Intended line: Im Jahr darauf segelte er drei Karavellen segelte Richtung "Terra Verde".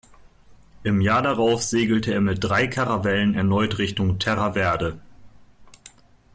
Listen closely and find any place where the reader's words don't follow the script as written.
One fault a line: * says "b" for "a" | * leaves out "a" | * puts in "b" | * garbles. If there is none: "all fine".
* puts in "mit"
* says "erneut" for "segelte"